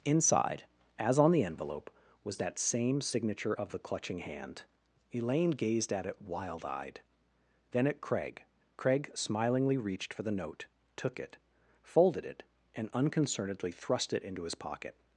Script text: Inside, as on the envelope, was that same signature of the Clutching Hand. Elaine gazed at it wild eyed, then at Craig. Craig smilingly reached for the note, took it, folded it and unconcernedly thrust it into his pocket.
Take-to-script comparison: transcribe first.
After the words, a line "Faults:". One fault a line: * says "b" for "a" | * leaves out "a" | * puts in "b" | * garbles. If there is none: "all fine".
Inside, as on the envelope, was that same signature of the Clutching Hand. Elaine gazed at it wild eyed, then at Craig. Craig smilingly reached for the note, took it, folded it and unconcernedly thrust it into his pocket.
Faults:
all fine